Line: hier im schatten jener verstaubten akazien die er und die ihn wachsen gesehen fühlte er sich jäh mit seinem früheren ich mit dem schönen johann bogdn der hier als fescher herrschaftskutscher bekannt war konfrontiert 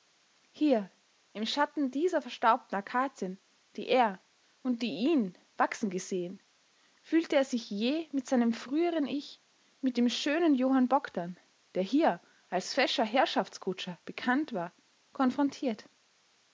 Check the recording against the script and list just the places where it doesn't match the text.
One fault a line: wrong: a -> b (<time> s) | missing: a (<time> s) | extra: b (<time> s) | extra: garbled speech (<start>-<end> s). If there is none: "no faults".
wrong: jener -> dieser (1.9 s)